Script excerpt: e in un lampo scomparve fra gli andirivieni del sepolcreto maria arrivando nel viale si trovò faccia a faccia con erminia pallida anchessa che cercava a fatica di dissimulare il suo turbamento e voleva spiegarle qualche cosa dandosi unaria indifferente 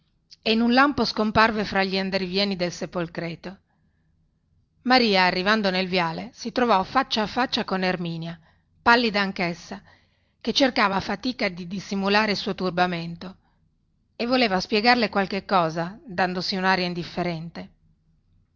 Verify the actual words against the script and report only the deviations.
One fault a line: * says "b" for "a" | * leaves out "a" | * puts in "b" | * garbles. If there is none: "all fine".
all fine